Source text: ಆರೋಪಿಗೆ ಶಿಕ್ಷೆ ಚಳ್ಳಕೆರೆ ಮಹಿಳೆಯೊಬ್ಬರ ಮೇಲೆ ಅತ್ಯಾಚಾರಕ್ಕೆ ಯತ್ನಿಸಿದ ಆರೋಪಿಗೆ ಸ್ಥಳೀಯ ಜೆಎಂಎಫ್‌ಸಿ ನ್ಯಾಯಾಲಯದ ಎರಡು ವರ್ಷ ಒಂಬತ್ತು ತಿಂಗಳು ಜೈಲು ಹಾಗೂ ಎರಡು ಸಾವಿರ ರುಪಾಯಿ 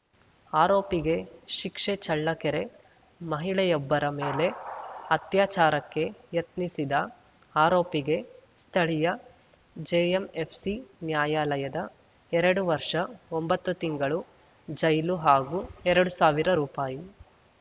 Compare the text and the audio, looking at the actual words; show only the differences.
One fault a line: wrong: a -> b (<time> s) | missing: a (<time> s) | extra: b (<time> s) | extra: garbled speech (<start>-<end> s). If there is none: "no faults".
no faults